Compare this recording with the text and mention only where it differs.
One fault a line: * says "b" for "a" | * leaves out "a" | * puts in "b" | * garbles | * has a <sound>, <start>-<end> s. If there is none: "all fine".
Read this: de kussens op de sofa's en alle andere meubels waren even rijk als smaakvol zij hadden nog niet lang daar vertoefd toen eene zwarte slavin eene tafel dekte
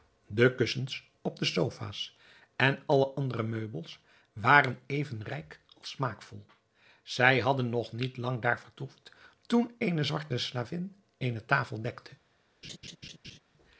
* has a laugh, 12.6-13.4 s